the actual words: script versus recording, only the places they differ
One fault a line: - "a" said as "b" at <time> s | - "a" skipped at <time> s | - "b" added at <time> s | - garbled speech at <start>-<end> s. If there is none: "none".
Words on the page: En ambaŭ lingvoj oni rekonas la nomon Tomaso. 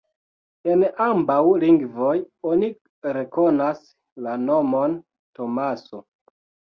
none